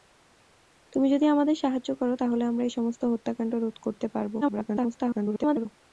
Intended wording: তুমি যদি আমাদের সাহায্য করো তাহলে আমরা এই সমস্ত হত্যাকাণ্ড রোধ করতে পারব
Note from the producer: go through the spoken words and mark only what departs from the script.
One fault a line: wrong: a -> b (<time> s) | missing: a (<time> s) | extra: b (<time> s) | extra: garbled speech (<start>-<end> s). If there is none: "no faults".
extra: garbled speech (4.4-5.7 s)